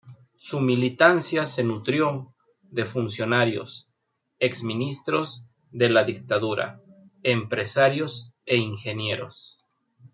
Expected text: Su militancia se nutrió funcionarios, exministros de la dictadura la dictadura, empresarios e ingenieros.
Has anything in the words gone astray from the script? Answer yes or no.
yes